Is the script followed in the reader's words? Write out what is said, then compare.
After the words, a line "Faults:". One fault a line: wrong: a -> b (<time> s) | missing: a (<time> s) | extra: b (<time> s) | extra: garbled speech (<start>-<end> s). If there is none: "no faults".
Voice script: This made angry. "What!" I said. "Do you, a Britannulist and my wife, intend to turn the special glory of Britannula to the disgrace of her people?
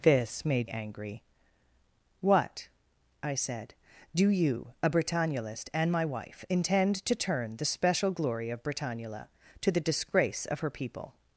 This made angry. "What!" I said. "Do you, a Britannulist and my wife, intend to turn the special glory of Britannula to the disgrace of her people?
Faults:
no faults